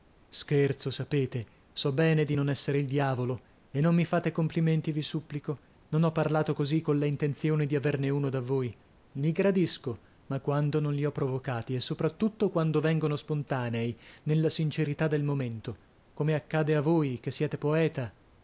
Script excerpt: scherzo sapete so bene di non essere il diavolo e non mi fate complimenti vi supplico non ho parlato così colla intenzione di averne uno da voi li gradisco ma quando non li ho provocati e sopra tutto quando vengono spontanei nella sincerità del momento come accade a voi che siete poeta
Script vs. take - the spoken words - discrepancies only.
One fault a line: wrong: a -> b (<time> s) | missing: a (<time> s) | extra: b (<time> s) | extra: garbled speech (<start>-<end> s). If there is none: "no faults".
no faults